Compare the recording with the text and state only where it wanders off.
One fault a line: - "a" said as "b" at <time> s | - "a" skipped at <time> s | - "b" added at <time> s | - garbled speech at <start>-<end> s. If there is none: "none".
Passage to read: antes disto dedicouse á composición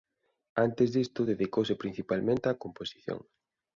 - "principalmente" added at 1.8 s